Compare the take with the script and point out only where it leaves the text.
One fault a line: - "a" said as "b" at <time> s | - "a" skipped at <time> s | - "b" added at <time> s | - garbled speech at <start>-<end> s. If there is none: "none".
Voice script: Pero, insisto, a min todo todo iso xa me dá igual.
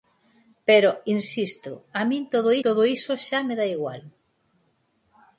none